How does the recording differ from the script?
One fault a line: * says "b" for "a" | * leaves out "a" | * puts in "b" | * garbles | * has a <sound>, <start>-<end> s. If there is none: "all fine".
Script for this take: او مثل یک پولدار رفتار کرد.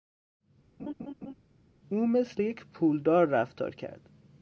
* has a laugh, 0.8-1.3 s